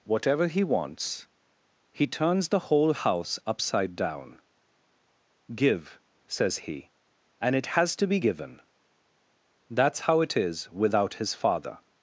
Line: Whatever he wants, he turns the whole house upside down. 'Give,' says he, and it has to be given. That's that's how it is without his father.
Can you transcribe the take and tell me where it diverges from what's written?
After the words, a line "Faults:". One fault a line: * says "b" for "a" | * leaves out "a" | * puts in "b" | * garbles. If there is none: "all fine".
Whatever he wants, he turns the whole house upside down. 'Give,' says he, and it has to be given. That's how it is without his father.
Faults:
* leaves out "that's"